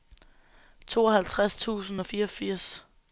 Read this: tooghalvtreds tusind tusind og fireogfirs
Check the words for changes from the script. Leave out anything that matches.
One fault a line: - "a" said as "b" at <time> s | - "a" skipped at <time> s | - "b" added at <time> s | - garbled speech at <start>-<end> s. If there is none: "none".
- "tusind" skipped at 2.0 s